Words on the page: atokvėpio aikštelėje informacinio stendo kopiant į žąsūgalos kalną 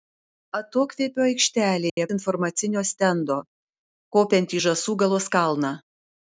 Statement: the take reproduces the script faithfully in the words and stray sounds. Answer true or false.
false